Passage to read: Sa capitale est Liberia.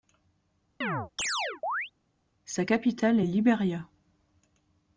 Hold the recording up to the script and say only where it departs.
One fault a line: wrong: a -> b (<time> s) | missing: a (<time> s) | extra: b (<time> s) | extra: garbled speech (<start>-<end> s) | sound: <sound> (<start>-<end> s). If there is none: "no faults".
sound: chirp (0.8-1.9 s)